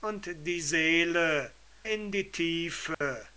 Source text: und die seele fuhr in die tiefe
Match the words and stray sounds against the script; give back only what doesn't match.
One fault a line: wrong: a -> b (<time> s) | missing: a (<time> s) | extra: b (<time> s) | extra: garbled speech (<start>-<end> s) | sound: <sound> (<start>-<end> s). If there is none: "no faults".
missing: fuhr (1.5 s)
sound: dropout (2.9-3.0 s)